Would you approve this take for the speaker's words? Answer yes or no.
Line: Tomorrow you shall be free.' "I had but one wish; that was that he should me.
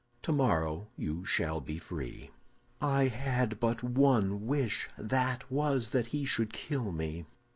no